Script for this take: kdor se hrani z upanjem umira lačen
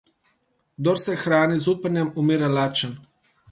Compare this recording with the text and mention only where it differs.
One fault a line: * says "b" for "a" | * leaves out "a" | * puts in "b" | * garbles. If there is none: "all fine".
all fine